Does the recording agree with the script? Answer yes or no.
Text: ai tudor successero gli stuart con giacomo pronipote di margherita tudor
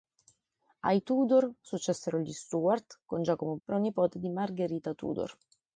yes